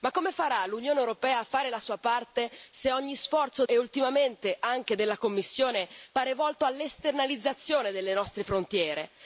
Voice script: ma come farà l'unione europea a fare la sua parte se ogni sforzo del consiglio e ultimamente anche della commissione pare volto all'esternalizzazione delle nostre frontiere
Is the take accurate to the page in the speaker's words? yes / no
no